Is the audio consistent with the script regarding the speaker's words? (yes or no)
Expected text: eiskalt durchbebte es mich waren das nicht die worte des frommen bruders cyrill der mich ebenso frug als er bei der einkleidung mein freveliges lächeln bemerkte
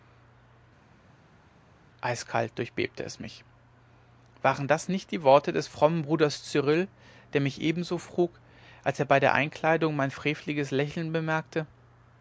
yes